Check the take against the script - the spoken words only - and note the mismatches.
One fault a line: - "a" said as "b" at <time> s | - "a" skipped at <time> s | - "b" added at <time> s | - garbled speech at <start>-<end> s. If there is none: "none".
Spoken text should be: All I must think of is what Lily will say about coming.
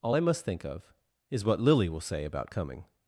none